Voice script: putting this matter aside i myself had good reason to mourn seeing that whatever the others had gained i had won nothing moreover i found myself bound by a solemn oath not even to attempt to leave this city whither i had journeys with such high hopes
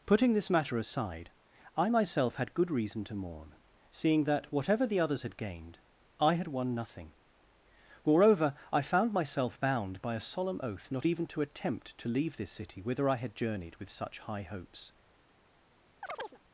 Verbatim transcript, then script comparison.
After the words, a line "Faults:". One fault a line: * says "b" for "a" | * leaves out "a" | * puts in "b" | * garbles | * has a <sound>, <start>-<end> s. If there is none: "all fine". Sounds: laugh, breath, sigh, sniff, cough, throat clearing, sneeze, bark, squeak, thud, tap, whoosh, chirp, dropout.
putting this matter aside i myself had good reason to mourn seeing that whatever the others had gained i had won nothing moreover i found myself bound by a solemn oath not even to attempt to leave this city whither i had journeyed with such high hopes
Faults:
* says "journeyed" for "journeys"
* has a chirp, 16.0-16.4 s